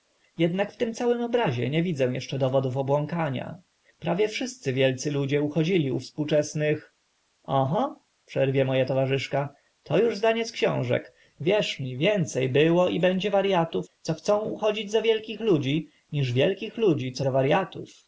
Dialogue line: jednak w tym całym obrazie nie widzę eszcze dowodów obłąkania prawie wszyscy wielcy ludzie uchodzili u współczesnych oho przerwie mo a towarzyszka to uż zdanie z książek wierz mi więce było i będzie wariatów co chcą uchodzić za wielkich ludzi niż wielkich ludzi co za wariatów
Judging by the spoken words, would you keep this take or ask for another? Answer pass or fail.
pass